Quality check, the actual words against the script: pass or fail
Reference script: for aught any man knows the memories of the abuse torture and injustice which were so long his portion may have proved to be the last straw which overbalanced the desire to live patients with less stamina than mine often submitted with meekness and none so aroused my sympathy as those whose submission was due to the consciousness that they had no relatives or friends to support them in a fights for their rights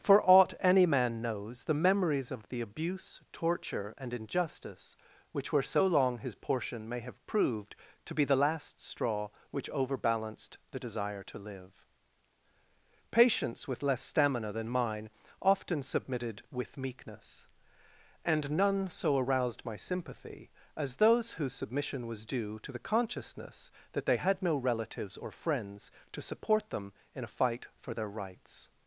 fail